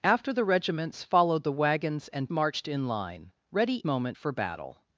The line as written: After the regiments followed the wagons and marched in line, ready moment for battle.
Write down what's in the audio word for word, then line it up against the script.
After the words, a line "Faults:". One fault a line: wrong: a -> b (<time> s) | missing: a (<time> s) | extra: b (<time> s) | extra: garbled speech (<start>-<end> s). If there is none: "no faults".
After the regiments followed the wagons and marched in line, ready moment for battle.
Faults:
no faults